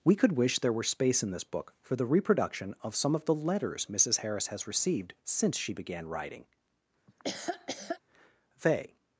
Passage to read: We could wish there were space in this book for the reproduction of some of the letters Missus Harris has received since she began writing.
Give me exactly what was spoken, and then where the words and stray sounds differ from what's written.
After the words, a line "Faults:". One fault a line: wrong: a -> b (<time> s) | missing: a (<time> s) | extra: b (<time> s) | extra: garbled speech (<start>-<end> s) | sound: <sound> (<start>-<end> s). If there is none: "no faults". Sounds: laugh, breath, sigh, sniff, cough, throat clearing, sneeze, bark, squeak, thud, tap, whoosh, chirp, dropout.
We could wish there were space in this book for the reproduction of some of the letters Missus Harris has received since she began writing. They
Faults:
sound: laugh (7.1-8.0 s)
extra: They (8.6 s)